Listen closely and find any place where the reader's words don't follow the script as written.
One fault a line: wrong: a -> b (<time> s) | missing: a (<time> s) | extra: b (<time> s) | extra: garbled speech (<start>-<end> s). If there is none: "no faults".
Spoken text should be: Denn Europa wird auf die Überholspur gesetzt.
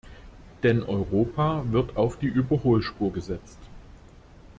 no faults